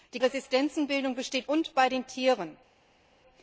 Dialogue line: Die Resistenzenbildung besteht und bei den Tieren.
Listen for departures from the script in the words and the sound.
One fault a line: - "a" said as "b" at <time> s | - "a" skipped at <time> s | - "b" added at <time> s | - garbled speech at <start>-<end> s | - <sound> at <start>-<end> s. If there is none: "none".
none